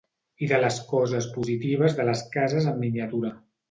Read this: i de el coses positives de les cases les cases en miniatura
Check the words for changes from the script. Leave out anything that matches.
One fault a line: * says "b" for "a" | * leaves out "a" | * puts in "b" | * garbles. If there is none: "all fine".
* says "les" for "el"
* leaves out "les cases"